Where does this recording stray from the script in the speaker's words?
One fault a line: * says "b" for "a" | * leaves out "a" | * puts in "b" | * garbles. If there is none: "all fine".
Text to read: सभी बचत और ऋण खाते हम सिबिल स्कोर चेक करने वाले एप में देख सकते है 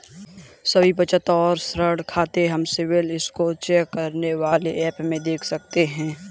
all fine